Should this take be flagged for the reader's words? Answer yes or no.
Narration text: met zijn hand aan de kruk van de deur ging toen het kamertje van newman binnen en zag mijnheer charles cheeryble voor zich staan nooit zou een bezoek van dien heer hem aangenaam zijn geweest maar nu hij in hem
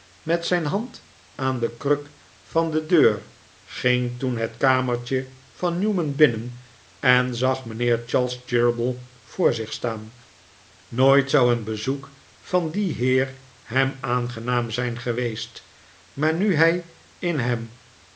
no